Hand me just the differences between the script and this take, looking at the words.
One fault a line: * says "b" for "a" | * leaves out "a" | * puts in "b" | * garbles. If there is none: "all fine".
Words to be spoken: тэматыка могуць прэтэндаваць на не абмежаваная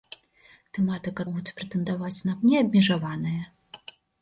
all fine